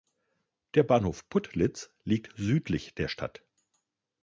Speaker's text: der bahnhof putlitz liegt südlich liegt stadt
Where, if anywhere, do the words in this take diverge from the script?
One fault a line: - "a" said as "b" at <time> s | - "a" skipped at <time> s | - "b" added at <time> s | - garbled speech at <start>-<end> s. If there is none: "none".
- "liegt" said as "der" at 3.0 s